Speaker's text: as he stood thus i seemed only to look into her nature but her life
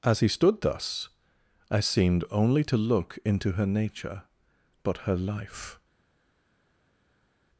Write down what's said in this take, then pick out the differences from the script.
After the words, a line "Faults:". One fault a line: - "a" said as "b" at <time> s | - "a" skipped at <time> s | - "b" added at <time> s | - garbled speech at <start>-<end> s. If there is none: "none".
as he stood thus i seemed only to look into her nature but her life
Faults:
none